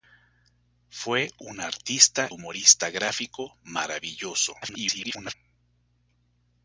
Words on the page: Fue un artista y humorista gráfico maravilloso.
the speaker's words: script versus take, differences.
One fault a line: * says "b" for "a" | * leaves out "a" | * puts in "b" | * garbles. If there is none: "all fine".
* leaves out "y"
* garbles